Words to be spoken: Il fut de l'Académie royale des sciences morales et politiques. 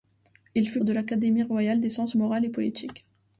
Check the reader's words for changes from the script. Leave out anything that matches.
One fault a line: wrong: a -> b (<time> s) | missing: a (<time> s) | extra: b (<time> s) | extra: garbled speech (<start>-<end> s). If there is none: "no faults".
no faults